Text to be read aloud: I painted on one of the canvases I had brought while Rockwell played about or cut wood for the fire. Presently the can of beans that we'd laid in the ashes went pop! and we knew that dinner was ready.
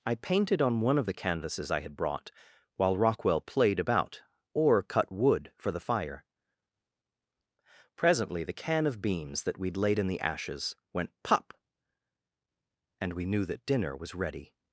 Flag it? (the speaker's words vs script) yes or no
no